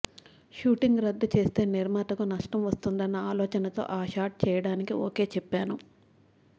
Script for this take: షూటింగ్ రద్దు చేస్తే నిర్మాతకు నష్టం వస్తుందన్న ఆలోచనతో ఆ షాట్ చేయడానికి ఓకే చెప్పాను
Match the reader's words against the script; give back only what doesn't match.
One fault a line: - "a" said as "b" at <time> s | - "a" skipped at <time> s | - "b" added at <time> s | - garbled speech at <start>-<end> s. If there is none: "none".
none